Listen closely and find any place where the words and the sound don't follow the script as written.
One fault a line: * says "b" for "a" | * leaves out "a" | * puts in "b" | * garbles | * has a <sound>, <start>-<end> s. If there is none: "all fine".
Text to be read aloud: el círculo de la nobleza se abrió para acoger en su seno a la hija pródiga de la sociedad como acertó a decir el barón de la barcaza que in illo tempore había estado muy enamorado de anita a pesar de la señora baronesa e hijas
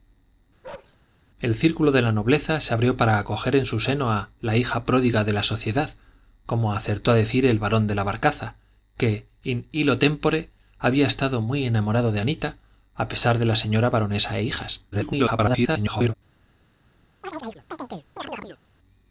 * has a bark, 0.6-1.0 s
* garbles
* has a chirp, 17.2-18.6 s